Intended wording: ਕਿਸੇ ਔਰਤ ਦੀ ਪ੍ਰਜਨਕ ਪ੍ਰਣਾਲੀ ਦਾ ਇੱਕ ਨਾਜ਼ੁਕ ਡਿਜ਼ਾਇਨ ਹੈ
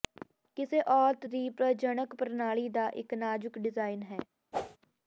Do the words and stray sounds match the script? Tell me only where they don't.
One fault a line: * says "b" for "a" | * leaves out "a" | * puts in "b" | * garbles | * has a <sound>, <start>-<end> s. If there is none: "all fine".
* has a whoosh, 4.5-4.8 s